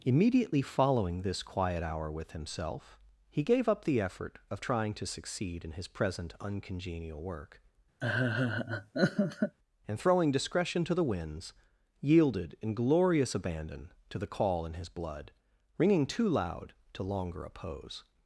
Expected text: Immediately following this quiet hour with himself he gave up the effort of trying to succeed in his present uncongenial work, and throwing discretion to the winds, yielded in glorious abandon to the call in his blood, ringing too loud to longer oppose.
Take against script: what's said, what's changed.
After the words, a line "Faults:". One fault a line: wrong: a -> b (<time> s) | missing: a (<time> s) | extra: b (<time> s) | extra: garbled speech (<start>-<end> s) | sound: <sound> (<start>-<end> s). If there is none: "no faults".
Immediately following this quiet hour with himself he gave up the effort of trying to succeed in his present uncongenial work, and throwing discretion to the winds, yielded in glorious abandon to the call in his blood, ringing too loud to longer oppose.
Faults:
sound: laugh (8.0-9.6 s)